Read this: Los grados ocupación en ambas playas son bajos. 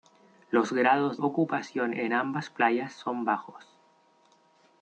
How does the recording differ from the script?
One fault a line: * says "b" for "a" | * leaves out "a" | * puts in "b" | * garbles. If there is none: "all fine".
all fine